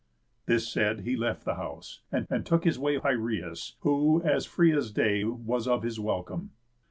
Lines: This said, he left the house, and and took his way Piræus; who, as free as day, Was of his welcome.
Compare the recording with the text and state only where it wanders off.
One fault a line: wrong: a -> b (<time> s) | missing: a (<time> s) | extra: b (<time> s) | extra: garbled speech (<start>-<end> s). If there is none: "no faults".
no faults